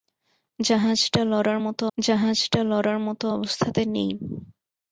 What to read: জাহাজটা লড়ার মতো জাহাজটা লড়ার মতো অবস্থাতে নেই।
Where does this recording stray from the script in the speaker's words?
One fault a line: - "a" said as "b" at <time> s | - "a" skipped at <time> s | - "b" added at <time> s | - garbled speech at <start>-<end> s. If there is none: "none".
none